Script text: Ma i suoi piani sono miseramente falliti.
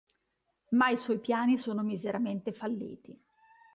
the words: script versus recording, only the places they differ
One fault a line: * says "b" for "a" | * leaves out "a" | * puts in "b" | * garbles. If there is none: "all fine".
all fine